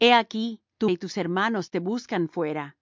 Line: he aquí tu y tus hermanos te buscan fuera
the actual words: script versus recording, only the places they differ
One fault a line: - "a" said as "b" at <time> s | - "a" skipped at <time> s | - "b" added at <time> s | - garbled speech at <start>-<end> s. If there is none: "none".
none